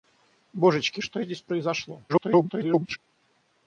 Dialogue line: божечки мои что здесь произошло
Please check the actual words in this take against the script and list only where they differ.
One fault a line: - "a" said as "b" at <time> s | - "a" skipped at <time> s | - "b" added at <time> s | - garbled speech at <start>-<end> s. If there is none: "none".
- "мои" skipped at 1.0 s
- garbled speech at 2.1-3.0 s